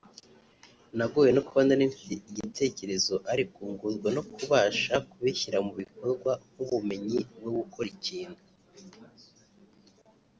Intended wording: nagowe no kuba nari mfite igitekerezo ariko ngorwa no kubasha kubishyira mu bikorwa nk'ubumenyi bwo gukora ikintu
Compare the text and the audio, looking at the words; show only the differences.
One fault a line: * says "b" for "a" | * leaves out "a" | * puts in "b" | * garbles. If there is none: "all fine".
all fine